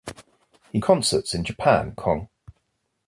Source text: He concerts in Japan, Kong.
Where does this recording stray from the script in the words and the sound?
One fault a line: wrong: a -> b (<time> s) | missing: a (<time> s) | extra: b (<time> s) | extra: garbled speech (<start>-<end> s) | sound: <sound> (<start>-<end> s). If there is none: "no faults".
no faults